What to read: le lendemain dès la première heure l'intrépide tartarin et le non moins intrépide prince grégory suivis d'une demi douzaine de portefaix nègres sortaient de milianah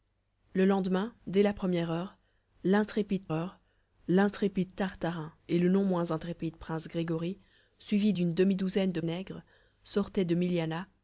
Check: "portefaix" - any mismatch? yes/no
yes